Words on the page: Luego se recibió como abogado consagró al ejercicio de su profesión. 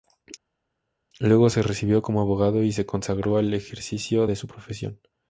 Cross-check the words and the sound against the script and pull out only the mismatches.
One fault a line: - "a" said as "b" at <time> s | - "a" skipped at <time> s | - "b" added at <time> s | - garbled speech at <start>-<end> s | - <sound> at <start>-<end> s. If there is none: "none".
- "y se" added at 2.6 s